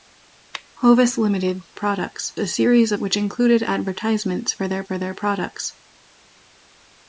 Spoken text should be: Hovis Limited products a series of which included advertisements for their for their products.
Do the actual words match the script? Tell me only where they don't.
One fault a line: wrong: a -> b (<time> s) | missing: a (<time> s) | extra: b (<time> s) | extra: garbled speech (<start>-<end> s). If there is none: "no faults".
no faults